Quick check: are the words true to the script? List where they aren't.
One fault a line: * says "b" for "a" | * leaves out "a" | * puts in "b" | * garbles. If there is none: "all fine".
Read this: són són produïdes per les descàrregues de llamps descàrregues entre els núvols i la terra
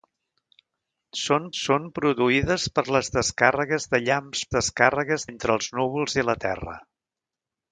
all fine